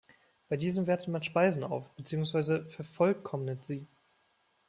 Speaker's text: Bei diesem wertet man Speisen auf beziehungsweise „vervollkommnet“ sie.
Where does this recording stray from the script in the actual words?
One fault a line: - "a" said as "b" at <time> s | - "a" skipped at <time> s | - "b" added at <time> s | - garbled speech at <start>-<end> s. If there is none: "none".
none